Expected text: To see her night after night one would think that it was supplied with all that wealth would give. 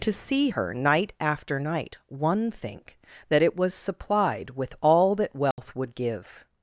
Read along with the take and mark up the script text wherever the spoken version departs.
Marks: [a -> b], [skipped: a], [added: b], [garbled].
To see her night after night one [skipped: would] think that it was supplied with all that wealth would give.